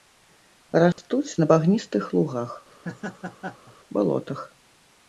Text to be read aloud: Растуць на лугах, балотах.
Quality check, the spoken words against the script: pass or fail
fail